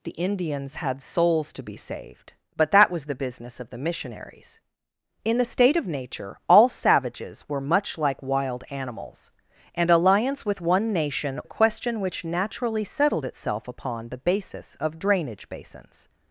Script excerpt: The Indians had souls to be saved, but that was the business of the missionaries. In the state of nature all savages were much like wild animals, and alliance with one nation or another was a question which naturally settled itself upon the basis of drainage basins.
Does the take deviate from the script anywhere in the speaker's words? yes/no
yes